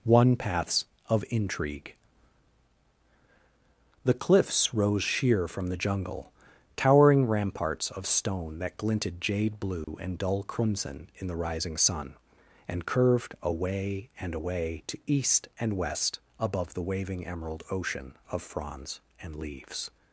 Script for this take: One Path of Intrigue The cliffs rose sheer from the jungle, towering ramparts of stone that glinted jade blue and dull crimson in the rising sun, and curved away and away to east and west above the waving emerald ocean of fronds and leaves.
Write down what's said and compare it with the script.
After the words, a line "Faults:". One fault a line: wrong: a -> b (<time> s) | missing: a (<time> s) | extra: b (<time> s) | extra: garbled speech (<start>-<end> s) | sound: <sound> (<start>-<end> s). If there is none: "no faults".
One Paths of Intrigue The cliffs rose sheer from the jungle, towering ramparts of stone that glinted jade blue and dull crimson in the rising sun, and curved away and away to east and west above the waving emerald ocean of fronds and leaves.
Faults:
wrong: Path -> Paths (0.3 s)
sound: dropout (9.8-9.9 s)